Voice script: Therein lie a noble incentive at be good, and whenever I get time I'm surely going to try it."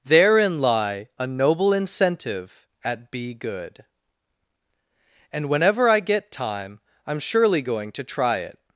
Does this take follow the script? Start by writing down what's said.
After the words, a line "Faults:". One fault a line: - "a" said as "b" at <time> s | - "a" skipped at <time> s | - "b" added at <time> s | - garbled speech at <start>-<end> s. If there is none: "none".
Therein lie a noble incentive at be good, and whenever I get time I'm surely going to try it."
Faults:
none